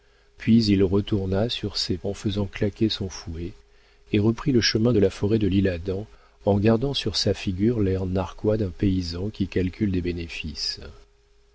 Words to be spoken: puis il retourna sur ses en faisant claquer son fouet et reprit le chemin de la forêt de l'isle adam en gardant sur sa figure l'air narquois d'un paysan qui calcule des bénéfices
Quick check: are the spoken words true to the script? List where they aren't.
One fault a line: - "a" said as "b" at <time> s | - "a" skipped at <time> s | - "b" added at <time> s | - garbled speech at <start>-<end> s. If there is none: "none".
none